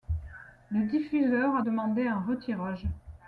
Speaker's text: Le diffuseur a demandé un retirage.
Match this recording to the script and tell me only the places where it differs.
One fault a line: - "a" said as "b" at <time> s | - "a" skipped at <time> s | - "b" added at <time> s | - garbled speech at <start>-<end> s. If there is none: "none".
none